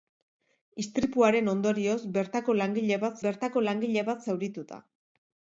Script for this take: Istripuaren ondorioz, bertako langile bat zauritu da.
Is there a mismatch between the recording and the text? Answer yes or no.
yes